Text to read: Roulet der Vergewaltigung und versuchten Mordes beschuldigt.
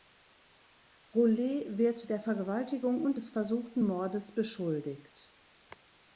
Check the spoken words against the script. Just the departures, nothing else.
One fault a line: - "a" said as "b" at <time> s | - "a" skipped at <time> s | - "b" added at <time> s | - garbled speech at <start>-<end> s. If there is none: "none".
- "wird" added at 1.8 s
- "des" added at 3.2 s